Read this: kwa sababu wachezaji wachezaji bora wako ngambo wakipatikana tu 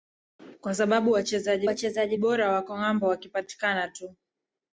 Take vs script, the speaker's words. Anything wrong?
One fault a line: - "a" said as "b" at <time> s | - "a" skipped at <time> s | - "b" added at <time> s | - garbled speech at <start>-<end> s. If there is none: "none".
none